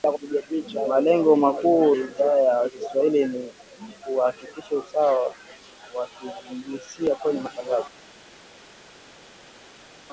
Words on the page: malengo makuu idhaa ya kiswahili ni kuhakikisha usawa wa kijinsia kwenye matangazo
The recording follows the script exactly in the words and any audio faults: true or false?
true